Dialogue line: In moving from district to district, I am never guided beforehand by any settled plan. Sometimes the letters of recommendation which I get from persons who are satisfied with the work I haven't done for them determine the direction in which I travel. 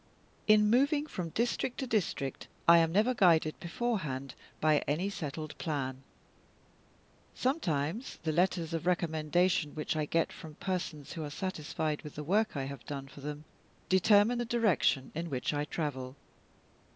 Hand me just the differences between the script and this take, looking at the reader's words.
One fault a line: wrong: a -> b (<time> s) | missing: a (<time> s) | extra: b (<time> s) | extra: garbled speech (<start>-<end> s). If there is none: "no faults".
wrong: haven't -> have (12.6 s)